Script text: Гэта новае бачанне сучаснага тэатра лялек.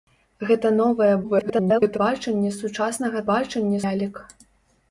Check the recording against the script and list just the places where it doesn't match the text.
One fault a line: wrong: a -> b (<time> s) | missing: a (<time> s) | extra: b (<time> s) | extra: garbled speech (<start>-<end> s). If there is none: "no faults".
extra: garbled speech (1.2-2.0 s)
wrong: тэатра -> бачанне (3.3 s)